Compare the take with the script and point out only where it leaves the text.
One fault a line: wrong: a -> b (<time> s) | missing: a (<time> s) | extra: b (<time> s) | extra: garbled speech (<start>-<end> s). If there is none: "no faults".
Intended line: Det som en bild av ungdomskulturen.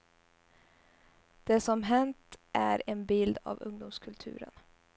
extra: hänt är (1.8 s)